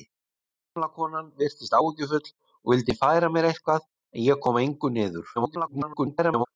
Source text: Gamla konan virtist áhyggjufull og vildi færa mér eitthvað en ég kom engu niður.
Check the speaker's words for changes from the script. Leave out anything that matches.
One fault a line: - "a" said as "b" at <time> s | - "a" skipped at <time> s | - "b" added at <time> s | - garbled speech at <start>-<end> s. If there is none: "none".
- garbled speech at 5.4-6.5 s